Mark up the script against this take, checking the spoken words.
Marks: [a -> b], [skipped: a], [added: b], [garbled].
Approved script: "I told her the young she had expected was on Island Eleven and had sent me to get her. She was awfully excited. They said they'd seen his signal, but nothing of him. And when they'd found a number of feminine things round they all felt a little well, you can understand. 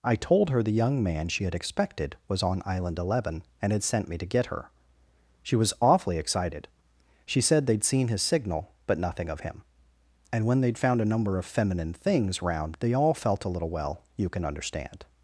"I told her the young [added: man] she had expected was on Island Eleven and had sent me to get her. She was awfully excited. [They -> She] said they'd seen his signal, but nothing of him. And when they'd found a number of feminine things round they all felt a little well, you can understand.